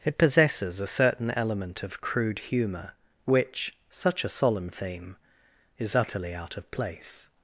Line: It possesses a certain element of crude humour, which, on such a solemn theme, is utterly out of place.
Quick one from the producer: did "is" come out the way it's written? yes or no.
yes